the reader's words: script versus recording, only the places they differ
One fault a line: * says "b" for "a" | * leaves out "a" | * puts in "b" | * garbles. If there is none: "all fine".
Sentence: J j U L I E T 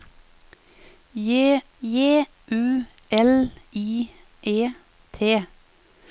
all fine